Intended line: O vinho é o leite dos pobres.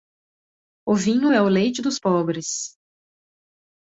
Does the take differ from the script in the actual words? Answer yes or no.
no